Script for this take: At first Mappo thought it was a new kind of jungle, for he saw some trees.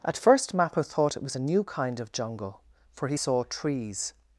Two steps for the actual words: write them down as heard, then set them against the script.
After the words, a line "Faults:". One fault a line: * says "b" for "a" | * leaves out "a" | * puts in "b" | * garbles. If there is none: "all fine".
At first Mappo thought it was a new kind of jungle, for he saw trees.
Faults:
* leaves out "some"